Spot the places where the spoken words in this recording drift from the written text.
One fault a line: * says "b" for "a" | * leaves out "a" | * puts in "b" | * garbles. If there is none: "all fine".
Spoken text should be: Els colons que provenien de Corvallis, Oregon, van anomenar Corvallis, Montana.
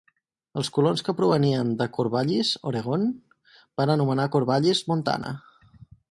all fine